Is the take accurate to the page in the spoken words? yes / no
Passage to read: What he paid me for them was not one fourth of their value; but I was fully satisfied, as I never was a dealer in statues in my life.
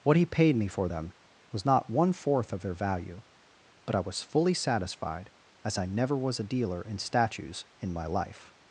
yes